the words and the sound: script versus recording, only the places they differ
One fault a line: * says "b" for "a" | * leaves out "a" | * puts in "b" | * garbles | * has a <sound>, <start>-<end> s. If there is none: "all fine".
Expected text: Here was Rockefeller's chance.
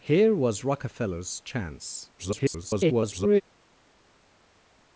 * garbles